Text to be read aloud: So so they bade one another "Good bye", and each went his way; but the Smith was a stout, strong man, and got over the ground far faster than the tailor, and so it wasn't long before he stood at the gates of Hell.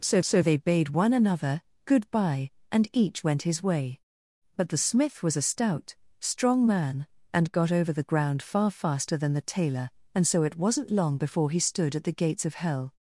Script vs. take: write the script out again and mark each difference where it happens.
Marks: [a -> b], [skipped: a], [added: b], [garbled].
So so they bade one another "Good bye", and each went his way; but the Smith was a stout, strong man, and got over the ground far faster than the tailor, and so it wasn't long before he stood at the gates of Hell.